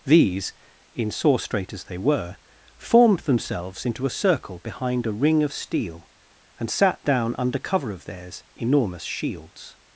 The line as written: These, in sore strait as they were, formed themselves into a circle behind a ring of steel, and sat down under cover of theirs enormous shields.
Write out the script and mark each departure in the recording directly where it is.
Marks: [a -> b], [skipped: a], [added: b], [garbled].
These, in sore strait as they were, formed themselves into a circle behind a ring of steel, and sat down under cover of theirs enormous shields.